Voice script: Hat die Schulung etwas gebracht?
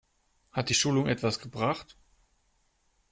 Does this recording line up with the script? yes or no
yes